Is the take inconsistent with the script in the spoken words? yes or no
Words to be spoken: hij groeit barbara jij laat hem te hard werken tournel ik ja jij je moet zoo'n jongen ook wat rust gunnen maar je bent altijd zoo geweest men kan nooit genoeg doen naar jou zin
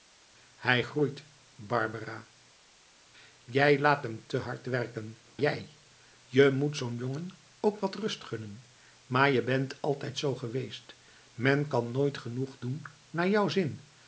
yes